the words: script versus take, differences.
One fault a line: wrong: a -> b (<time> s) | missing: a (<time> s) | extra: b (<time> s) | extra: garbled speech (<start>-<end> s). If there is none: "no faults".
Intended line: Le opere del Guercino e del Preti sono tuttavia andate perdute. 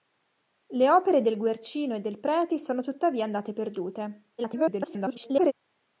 extra: garbled speech (4.4-5.5 s)